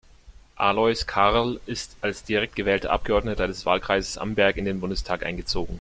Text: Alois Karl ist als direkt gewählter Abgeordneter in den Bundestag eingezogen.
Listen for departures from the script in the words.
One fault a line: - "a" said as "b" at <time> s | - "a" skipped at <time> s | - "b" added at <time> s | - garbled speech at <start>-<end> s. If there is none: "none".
- "des Wahlkreises Amberg" added at 3.5 s